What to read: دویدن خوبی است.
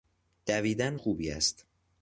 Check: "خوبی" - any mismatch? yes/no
no